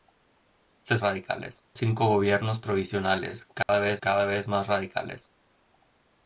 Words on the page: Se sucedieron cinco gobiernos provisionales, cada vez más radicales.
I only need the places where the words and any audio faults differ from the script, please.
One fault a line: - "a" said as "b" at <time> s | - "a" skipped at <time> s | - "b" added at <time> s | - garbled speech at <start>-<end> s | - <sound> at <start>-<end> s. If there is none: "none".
- "sucedieron" said as "radicales" at 1.0 s
- dropout at 3.6-3.7 s
- "cada vez" added at 4.0 s